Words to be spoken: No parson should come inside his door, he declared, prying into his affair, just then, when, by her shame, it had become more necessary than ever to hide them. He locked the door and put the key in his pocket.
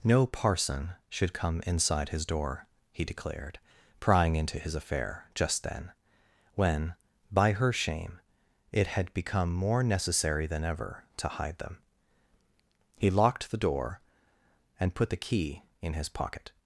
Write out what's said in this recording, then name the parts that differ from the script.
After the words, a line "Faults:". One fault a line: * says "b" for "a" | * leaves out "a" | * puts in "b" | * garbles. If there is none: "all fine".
No parson should come inside his door, he declared, prying into his affair, just then, when, by her shame, it had become more necessary than ever to hide them. He locked the door and put the key in his pocket.
Faults:
all fine